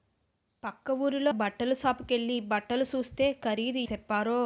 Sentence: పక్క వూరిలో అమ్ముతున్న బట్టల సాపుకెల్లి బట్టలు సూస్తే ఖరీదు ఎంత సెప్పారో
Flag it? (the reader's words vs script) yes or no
yes